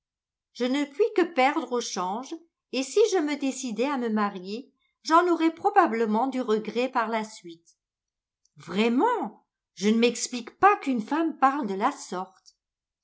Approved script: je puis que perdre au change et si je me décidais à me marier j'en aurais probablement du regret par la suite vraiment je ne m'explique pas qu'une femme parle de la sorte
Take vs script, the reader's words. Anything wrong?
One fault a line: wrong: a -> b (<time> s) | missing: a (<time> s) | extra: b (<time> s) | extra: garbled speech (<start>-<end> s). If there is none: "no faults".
extra: ne (0.7 s)